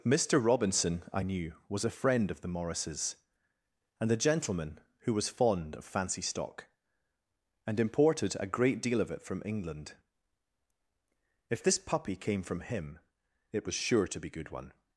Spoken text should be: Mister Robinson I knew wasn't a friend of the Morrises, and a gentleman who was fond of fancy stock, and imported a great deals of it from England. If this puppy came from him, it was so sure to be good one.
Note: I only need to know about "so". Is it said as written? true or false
false